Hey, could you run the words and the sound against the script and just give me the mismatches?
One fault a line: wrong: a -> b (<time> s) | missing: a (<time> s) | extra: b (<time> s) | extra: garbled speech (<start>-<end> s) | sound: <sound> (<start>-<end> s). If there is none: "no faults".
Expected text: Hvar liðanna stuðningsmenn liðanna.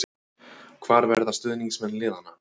wrong: liðanna -> verða (1.1 s)